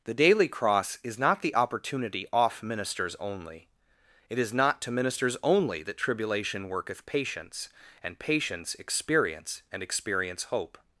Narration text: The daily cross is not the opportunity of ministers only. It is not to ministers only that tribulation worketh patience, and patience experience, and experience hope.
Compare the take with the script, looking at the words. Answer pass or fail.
fail